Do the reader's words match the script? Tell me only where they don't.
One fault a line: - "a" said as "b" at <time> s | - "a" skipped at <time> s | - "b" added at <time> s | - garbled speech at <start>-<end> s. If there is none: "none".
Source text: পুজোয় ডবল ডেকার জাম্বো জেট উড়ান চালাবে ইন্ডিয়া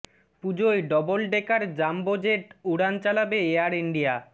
- "এয়ার" added at 3.5 s